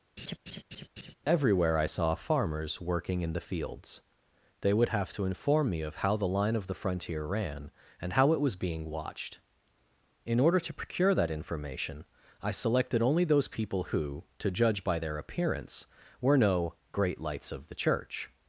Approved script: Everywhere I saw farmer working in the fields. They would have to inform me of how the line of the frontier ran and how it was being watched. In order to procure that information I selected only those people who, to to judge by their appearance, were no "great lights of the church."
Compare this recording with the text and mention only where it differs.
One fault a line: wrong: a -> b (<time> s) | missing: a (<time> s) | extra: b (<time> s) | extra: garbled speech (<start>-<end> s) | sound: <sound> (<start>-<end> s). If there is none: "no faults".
sound: laugh (0.2-1.1 s)
wrong: farmer -> farmers (2.2 s)
missing: to (14.5 s)